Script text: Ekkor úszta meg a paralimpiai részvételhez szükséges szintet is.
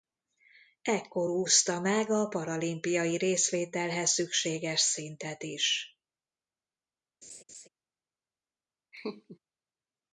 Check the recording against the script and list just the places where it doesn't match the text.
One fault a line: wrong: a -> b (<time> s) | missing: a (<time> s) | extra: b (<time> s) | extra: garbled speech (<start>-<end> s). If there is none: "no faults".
no faults